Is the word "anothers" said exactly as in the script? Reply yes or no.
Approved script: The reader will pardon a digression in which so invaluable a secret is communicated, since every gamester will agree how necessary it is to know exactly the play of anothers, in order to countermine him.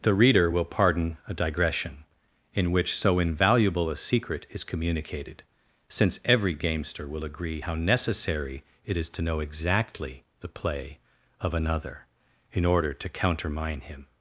no